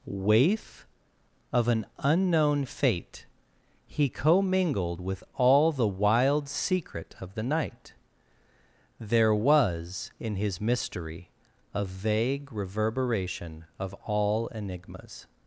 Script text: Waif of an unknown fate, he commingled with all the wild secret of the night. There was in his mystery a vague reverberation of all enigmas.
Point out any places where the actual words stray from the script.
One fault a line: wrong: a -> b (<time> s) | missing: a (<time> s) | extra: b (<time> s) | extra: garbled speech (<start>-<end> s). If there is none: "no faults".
no faults